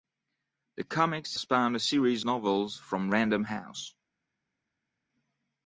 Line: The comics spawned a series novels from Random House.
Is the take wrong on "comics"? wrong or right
right